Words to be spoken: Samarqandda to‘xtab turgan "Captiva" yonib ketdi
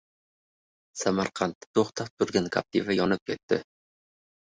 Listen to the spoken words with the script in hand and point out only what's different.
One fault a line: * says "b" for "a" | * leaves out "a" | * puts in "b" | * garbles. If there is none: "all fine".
all fine